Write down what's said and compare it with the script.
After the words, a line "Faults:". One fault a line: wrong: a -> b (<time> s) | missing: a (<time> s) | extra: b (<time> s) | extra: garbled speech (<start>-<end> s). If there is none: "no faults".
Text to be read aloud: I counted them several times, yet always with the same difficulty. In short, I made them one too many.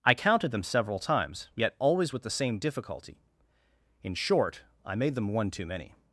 I counted them several times, yet always with the same difficulty. In short, I made them one too many.
Faults:
no faults